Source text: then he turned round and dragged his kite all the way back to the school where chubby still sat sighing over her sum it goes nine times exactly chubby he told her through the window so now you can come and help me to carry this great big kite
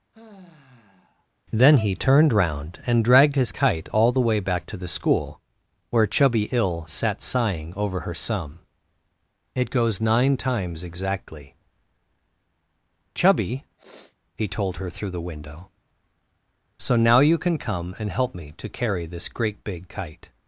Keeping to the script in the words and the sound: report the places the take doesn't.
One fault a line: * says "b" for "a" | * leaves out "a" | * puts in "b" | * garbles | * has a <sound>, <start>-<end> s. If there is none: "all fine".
* has a sigh, 0.1-1.3 s
* says "ill" for "still"
* has a sniff, 13.8-14.2 s